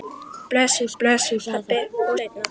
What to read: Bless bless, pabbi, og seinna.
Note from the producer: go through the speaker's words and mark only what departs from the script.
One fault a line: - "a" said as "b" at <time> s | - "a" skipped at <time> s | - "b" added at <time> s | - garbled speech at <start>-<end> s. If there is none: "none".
none